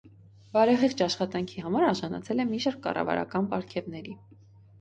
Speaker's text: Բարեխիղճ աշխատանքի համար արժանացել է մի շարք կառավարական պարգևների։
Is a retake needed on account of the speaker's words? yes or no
no